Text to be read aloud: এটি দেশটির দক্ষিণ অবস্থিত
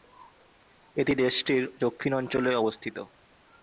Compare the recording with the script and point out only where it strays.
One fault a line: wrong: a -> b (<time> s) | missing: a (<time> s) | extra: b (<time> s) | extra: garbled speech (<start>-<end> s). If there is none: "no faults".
extra: অঞ্চলে (2.1 s)